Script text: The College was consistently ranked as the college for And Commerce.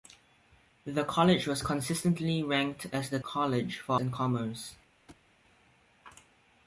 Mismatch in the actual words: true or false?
false